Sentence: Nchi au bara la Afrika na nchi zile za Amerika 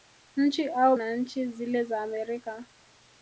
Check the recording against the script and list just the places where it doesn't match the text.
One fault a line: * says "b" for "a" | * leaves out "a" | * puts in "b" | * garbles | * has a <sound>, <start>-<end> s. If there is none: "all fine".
* leaves out "bara la Afrika"